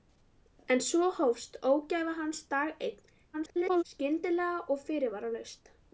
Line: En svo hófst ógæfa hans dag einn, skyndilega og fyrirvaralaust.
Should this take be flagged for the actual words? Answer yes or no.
yes